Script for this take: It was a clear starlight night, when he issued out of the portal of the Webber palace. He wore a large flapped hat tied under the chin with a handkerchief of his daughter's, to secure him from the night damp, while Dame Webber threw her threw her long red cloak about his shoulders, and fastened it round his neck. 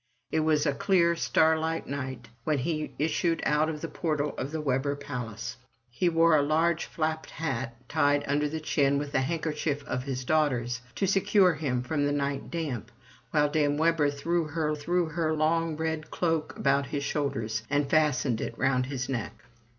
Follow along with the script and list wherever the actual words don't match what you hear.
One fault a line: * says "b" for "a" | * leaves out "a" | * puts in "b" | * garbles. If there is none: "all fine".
all fine